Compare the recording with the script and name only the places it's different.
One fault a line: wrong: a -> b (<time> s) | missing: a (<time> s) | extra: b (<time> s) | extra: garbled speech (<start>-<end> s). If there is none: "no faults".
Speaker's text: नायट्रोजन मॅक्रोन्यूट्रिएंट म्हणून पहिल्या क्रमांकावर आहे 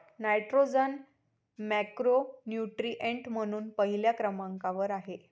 no faults